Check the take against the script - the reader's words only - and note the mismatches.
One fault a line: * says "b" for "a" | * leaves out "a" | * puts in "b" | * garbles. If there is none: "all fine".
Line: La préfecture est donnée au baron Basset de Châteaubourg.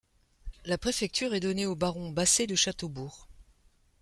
all fine